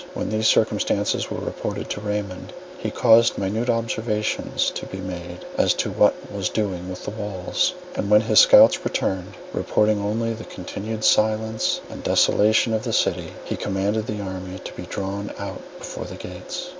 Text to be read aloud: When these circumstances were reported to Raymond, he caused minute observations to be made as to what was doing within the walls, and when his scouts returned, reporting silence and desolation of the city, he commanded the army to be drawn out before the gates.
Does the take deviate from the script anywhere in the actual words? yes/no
yes